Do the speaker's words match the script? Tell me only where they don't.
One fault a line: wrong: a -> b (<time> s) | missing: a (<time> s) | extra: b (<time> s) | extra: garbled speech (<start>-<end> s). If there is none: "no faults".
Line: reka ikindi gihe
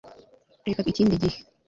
no faults